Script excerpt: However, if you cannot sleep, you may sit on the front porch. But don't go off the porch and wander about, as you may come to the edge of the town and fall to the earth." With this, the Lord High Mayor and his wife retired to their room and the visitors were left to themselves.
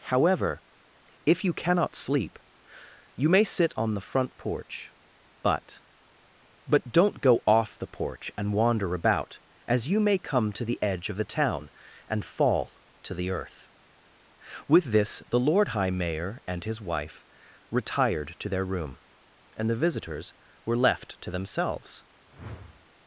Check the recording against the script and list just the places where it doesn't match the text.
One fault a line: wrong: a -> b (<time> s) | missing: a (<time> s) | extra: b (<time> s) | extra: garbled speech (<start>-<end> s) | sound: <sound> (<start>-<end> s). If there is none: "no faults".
extra: But (6.7 s)
sound: whoosh (22.3-22.9 s)